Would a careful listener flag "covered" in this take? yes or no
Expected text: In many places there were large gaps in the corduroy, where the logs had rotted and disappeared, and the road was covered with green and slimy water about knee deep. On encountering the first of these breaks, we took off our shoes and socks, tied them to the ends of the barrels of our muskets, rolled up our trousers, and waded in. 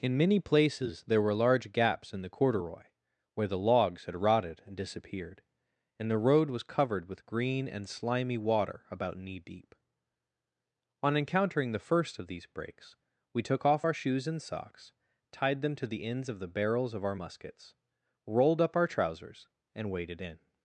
no